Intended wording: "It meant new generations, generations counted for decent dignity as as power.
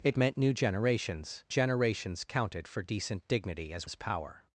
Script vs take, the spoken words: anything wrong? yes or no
no